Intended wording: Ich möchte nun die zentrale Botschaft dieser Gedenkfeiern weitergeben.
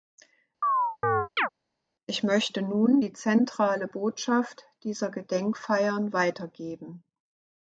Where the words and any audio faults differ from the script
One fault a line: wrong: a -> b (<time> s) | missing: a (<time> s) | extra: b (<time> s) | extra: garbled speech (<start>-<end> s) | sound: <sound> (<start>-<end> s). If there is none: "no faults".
sound: chirp (0.6-1.5 s)